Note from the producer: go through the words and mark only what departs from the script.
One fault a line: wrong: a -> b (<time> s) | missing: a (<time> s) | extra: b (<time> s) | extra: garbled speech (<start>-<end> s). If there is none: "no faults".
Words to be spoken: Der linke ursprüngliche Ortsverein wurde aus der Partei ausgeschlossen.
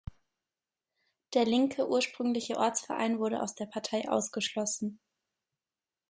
no faults